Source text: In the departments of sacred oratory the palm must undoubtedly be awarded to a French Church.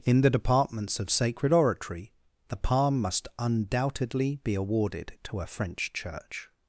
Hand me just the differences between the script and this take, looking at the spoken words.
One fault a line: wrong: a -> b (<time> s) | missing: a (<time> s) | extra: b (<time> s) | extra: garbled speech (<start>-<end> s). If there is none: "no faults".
no faults